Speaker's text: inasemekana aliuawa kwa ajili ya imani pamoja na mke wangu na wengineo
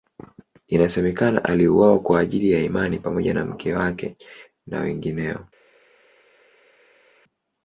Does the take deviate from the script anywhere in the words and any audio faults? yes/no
yes